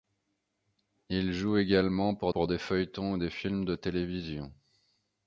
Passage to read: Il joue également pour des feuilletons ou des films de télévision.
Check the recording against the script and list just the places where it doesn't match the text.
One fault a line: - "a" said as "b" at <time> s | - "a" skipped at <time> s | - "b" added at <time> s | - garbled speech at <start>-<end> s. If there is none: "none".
- "pour" added at 2.3 s